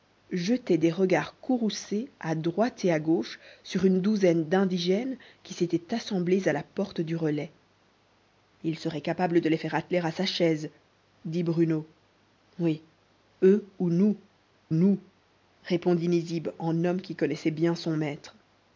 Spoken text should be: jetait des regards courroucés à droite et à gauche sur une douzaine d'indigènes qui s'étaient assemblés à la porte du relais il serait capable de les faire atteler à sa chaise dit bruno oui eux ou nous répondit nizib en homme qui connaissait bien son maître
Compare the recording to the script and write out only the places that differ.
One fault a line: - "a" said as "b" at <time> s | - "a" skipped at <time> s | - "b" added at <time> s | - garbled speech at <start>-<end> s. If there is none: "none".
- "nous" added at 14.7 s